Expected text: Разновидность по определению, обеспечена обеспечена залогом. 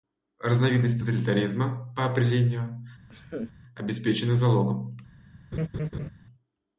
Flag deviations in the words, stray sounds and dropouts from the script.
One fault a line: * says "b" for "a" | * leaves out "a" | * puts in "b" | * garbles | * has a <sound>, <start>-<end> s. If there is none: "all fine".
* puts in "тоталитаризма"
* has a laugh, 3.1-3.5 s
* leaves out "обеспечена"
* has a laugh, 5.5-6.1 s